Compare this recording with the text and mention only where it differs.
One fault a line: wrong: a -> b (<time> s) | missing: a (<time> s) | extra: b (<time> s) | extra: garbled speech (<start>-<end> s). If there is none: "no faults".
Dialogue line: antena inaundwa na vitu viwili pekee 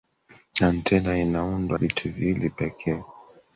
missing: na (1.8 s)